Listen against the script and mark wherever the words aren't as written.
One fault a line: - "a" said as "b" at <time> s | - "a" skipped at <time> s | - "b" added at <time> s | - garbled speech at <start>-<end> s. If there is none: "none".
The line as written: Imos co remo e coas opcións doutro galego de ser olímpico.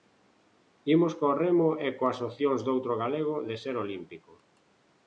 none